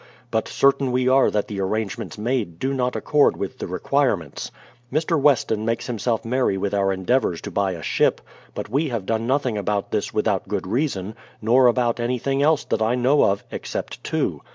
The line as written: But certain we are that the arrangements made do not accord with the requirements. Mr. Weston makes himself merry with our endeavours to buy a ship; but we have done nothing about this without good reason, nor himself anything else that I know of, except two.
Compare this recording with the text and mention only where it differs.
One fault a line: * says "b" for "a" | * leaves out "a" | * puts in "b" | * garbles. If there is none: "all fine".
* says "about" for "himself"